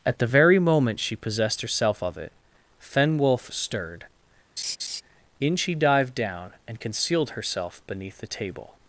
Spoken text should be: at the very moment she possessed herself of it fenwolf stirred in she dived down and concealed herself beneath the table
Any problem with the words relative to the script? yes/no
no